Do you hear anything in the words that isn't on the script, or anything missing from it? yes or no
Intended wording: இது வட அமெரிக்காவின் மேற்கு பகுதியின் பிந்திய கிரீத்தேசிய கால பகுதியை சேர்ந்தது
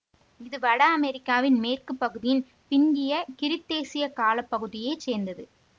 no